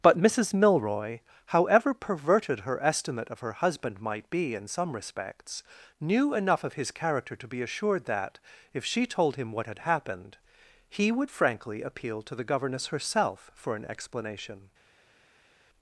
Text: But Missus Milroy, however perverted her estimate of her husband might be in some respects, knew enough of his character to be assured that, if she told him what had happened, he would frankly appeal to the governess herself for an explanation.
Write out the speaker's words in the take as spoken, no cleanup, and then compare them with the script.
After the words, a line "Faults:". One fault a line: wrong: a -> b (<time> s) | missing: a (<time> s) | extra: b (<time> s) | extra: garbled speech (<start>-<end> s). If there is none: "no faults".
But Missus Milroy, however perverted her estimate of her husband might be in some respects, knew enough of his character to be assured that, if she told him what had happened, he would frankly appeal to the governess herself for an explanation.
Faults:
no faults